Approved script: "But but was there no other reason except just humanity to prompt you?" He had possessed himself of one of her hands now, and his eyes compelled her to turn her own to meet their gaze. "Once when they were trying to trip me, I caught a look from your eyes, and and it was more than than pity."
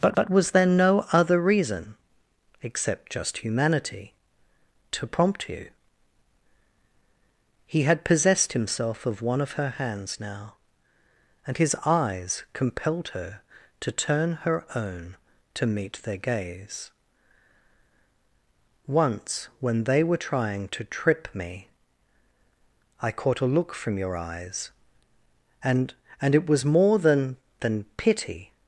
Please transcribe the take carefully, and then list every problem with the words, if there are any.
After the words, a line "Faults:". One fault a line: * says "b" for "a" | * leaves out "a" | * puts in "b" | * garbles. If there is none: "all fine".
"But but was there no other reason except just humanity to prompt you?" He had possessed himself of one of her hands now, and his eyes compelled her to turn her own to meet their gaze. "Once when they were trying to trip me, I caught a look from your eyes, and and it was more than than pity."
Faults:
all fine